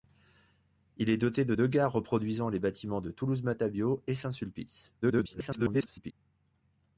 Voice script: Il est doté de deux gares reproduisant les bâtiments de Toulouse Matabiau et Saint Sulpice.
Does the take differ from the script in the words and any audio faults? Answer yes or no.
yes